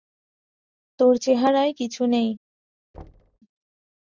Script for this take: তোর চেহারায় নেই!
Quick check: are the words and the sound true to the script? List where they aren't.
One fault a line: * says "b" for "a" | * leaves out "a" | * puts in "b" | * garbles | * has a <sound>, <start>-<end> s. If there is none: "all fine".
* puts in "কিছু"
* has a thud, 2.9-3.4 s